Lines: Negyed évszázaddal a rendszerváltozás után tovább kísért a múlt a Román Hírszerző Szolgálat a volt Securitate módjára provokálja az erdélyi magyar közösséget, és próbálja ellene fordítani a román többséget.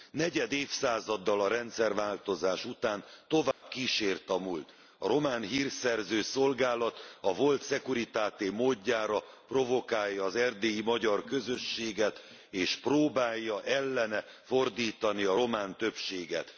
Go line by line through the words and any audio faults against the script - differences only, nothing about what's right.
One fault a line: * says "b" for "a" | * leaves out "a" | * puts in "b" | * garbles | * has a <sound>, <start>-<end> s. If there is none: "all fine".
* has a dropout, 3.5-3.6 s